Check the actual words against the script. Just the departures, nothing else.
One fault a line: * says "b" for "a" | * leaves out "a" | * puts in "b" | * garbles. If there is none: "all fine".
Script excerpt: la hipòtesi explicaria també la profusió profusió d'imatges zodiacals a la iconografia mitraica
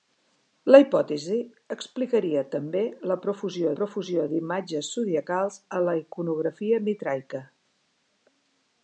all fine